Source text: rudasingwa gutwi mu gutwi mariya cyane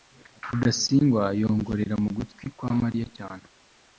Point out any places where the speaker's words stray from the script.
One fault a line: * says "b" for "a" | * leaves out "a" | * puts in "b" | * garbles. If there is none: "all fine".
* says "yongorera" for "gutwi"
* puts in "kwa"